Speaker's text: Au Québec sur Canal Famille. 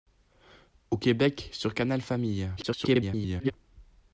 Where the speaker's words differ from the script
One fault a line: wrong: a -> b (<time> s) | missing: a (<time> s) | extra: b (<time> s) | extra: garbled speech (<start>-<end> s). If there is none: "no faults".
extra: garbled speech (2.6-3.5 s)